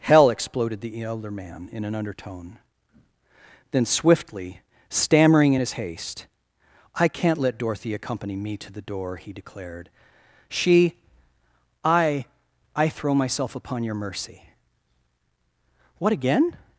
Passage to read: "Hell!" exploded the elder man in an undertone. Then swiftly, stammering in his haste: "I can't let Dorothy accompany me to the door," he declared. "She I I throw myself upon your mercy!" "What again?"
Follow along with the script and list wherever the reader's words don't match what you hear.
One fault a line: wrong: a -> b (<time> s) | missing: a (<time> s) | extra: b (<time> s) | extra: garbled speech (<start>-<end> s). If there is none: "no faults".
no faults